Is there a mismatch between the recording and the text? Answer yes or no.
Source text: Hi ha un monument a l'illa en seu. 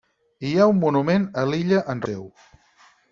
no